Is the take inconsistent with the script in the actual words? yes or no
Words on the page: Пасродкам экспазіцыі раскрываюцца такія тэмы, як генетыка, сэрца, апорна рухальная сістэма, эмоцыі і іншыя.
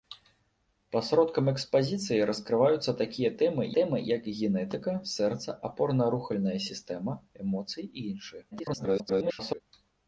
yes